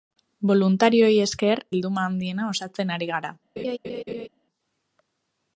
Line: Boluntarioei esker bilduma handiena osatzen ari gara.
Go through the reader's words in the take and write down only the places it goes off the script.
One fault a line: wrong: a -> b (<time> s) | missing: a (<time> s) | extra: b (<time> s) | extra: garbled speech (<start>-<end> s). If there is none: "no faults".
no faults